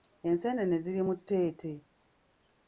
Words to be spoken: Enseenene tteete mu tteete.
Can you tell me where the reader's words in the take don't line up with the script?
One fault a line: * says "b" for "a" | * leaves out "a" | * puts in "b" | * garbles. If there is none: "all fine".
* says "ziri" for "tteete"